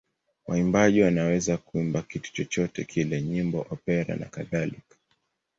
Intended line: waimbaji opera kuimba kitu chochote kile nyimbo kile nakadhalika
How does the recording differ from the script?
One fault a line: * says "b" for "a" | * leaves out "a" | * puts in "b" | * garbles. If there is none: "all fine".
* says "wanaweza" for "opera"
* says "opera" for "kile"